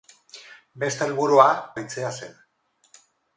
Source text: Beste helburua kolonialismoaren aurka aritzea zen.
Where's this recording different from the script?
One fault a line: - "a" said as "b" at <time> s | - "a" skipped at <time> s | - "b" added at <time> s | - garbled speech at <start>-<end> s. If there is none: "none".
- "kolonialismoaren aurka" skipped at 1.4 s